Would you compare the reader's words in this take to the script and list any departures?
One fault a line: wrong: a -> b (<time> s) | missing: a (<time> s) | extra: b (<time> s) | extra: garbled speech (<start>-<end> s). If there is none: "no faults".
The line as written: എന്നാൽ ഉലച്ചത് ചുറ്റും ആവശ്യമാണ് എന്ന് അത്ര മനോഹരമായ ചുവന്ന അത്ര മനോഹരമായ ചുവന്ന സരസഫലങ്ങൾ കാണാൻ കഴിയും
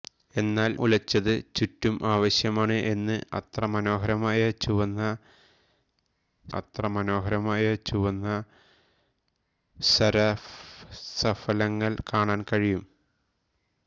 no faults